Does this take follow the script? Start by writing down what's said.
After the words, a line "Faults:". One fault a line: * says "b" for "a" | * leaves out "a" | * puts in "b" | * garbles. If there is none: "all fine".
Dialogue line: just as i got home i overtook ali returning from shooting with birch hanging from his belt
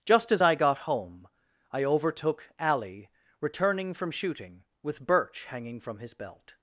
just as i got home i overtook ali returning from shooting with birch hanging from his belt
Faults:
all fine